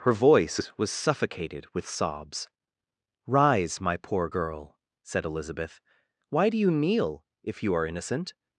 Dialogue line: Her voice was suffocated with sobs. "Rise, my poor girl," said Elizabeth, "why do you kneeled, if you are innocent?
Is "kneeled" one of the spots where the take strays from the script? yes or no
yes